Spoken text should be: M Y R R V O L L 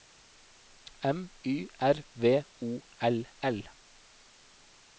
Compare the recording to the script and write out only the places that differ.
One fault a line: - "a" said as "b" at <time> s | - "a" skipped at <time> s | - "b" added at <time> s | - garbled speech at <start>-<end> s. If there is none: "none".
- "R" skipped at 2.1 s